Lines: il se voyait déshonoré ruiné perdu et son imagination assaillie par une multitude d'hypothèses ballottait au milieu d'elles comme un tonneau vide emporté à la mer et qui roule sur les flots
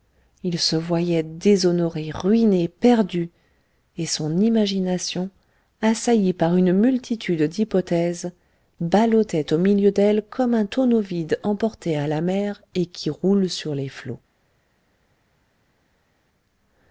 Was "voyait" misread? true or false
false